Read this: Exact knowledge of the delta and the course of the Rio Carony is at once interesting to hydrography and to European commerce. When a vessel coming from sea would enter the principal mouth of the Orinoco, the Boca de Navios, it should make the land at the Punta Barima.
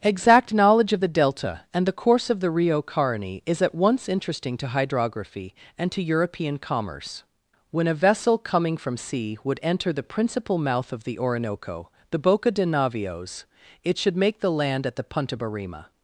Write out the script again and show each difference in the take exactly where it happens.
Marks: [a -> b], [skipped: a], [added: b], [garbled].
Exact knowledge of the delta and the course of the Rio Carony is at once interesting to hydrography and to European commerce. When a vessel coming from sea would enter the principal mouth of the Orinoco, the Boca de Navios, it should make the land at the Punta Barima.